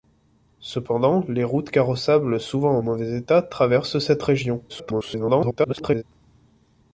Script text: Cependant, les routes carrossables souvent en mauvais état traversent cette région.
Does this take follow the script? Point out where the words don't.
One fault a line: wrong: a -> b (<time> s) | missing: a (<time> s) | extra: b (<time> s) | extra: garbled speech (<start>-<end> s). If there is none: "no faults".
extra: garbled speech (4.7-6.0 s)